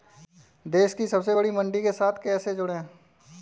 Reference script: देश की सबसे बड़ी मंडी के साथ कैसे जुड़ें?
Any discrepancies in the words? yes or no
no